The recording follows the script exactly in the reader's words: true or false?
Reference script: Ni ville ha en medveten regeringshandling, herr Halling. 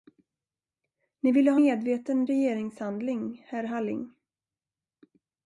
false